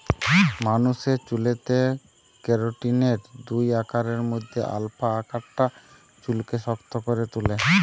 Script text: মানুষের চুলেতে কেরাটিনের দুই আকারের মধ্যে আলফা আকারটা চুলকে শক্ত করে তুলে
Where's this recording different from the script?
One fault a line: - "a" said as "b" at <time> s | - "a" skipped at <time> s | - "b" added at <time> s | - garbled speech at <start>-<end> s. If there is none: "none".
none